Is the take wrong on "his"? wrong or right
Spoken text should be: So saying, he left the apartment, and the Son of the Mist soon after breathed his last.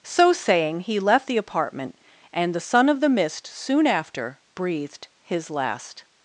right